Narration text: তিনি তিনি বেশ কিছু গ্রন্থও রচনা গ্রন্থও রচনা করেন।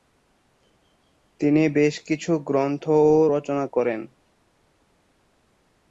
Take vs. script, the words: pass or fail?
fail